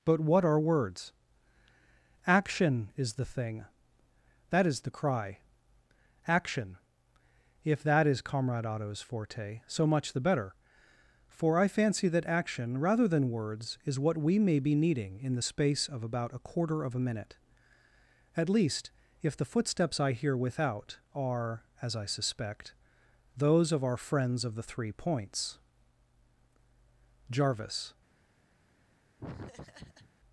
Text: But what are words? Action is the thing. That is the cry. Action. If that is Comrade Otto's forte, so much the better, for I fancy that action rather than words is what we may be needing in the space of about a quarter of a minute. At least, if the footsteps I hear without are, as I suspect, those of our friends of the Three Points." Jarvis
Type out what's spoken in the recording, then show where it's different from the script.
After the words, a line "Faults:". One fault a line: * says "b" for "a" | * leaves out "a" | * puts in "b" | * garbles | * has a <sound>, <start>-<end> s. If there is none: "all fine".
But what are words? Action is the thing. That is the cry. Action. If that is Comrade Otto's forte, so much the better, for I fancy that action rather than words is what we may be needing in the space of about a quarter of a minute. At least, if the footsteps I hear without are, as I suspect, those of our friends of the Three Points." Jarvis
Faults:
* has a laugh, 29.2-30.1 s